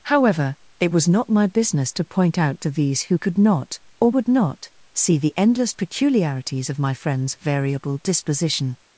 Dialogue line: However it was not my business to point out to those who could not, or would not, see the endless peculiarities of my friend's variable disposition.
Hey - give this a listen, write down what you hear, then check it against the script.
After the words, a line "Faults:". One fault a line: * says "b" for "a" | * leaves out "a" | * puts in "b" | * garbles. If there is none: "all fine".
However it was not my business to point out to these who could not, or would not, see the endless peculiarities of my friend's variable disposition.
Faults:
* says "these" for "those"